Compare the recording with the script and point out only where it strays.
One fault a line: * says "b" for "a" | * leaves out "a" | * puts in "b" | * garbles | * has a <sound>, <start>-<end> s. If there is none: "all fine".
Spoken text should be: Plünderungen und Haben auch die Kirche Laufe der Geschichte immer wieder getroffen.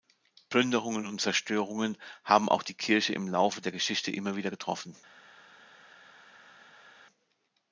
* puts in "Zerstörungen"
* puts in "im"